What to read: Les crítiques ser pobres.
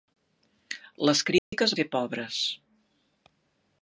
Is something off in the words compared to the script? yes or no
no